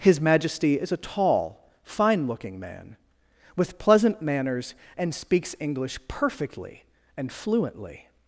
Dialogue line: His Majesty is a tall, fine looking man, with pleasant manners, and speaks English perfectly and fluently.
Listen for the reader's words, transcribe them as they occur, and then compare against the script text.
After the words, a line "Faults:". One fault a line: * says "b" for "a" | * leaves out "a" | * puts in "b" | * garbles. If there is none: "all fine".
His Majesty is a tall, fine looking man, with pleasant manners, and speaks English perfectly and fluently.
Faults:
all fine